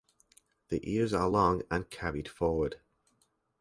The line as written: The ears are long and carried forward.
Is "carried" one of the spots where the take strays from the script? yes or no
no